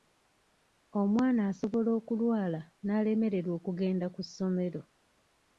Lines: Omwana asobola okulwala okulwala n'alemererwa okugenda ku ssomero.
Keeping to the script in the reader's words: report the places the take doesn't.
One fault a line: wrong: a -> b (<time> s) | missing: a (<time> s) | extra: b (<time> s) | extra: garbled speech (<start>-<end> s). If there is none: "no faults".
missing: okulwala (2.6 s)